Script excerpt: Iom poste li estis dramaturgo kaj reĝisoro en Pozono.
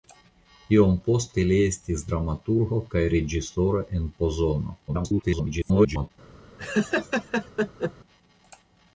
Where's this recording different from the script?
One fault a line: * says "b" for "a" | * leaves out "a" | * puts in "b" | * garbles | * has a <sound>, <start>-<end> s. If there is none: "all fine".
* garbles
* has a laugh, 6.6-7.9 s